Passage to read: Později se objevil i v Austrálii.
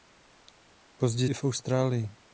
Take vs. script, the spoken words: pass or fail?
fail